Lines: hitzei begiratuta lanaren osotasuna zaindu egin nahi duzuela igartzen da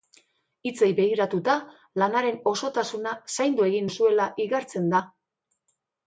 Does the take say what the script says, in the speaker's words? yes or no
no